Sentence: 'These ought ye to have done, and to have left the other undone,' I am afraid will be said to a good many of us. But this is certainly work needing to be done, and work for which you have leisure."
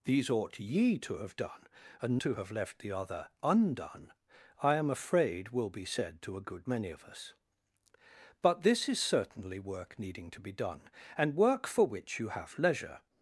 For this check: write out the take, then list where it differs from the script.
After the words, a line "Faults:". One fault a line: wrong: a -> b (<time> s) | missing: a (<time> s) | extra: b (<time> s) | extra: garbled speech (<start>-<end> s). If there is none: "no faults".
'These ought ye to have done, and to have left the other undone,' I am afraid will be said to a good many of us. But this is certainly work needing to be done, and work for which you have leisure."
Faults:
no faults